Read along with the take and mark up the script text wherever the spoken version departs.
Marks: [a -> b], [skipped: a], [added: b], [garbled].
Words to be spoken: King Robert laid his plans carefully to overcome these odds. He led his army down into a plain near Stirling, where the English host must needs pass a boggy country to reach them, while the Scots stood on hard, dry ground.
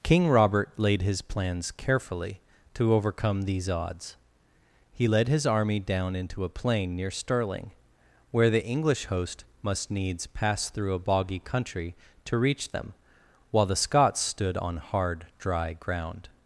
King Robert laid his plans carefully to overcome these odds. He led his army down into a plain near Stirling, where the English host must needs pass [added: through] a boggy country to reach them, while the Scots stood on hard, dry ground.